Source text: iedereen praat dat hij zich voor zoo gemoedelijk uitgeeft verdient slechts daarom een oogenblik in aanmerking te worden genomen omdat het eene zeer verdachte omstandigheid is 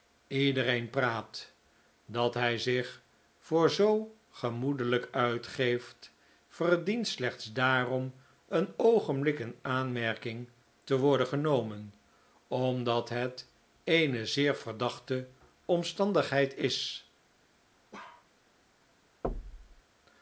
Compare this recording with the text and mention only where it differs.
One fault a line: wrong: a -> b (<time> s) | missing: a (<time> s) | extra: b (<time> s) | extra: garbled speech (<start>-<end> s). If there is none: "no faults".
no faults